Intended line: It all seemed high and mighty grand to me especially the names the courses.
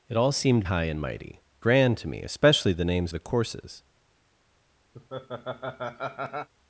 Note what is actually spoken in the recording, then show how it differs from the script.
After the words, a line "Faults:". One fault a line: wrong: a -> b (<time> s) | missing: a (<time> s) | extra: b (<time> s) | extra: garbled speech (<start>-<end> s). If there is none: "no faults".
It all seemed high and mighty grand to me especially the names the courses.
Faults:
no faults